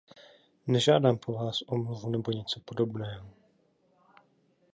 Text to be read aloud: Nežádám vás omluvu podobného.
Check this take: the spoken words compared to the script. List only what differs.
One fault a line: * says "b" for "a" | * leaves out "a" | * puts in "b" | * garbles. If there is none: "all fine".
* puts in "po"
* puts in "nebo něco"